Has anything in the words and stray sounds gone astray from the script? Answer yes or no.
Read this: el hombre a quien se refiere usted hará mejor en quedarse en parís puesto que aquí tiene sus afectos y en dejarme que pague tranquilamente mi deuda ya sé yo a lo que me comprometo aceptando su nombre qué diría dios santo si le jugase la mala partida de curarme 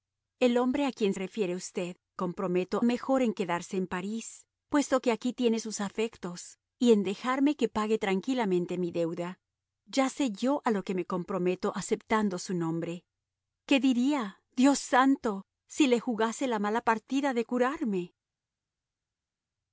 yes